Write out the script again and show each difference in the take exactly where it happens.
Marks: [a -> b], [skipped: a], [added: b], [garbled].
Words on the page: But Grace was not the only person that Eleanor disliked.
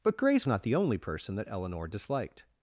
But Grace [skipped: was] not the only person that Eleanor disliked.